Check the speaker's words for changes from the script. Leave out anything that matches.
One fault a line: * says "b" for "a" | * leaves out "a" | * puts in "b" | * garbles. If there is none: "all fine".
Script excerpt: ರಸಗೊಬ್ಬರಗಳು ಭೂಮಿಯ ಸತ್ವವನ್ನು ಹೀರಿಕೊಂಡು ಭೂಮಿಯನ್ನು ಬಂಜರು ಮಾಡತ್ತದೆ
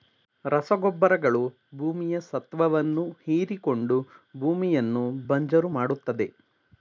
all fine